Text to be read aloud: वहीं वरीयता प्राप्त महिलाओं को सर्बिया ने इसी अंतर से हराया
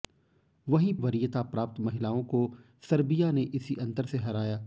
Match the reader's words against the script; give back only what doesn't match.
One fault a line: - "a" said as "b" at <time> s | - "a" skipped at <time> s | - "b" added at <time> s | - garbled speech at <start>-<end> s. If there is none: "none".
none